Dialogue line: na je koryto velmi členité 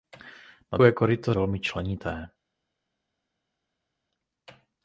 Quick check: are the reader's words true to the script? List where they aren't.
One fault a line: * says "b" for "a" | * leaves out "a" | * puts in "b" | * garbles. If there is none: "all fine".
all fine